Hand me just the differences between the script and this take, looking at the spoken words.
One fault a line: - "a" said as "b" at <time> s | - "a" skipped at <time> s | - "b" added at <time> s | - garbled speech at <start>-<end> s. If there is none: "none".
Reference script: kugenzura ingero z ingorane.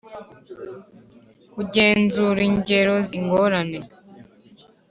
none